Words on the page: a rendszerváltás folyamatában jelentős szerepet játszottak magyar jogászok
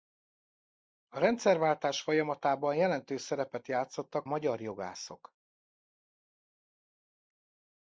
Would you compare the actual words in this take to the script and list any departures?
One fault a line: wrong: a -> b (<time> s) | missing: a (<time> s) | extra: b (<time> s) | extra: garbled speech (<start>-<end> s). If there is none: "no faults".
no faults